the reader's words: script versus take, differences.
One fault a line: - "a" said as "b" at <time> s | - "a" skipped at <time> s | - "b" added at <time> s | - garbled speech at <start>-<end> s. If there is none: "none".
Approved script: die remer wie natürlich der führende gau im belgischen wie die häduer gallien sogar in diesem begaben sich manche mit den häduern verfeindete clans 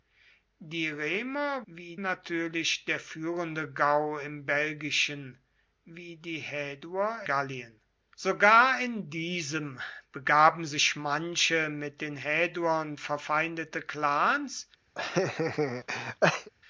none